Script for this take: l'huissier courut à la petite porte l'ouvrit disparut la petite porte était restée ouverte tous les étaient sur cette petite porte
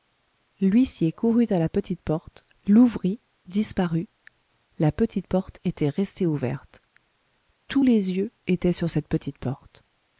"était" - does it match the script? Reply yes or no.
yes